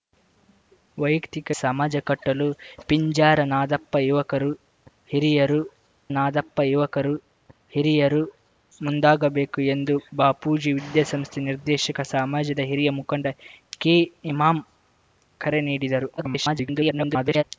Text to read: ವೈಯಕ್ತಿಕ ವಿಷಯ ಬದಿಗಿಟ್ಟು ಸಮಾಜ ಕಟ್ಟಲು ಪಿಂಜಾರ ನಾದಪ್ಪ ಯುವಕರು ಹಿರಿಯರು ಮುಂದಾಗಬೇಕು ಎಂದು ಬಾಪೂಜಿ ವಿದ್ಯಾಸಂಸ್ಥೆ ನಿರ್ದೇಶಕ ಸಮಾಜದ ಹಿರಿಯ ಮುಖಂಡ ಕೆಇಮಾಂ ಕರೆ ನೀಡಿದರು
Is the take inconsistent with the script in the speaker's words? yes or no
yes